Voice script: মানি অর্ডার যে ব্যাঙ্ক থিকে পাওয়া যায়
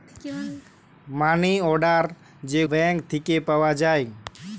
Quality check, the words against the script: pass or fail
pass